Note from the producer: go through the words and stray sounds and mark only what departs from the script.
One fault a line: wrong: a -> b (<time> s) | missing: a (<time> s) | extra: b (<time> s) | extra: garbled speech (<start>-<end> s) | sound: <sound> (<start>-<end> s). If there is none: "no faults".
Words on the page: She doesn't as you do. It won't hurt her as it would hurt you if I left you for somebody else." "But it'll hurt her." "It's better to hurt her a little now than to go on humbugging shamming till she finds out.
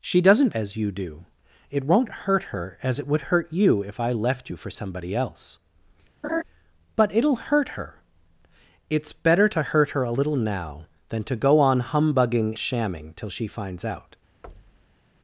sound: laugh (6.2-6.4 s)
sound: thud (14.4-15.0 s)